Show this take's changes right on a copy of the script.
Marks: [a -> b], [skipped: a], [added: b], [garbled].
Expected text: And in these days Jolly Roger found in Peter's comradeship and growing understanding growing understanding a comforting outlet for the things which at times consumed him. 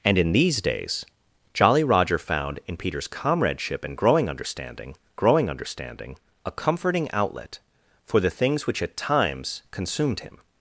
And in these days Jolly Roger found in Peter's comradeship and growing understanding growing understanding a comforting outlet for the things which at times consumed him.